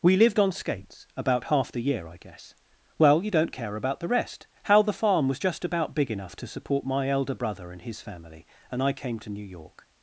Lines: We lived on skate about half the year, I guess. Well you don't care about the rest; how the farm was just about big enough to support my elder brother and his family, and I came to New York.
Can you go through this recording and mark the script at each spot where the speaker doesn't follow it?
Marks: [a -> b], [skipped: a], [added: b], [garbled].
We lived on [skate -> skates] about half the year, I guess. Well you don't care about the rest; how the farm was just about big enough to support my elder brother and his family, and I came to New York.